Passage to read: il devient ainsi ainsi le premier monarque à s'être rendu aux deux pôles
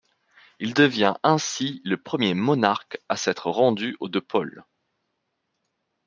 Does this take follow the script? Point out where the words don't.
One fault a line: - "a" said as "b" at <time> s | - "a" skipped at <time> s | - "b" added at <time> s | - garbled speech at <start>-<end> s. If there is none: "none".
- "ainsi" skipped at 1.8 s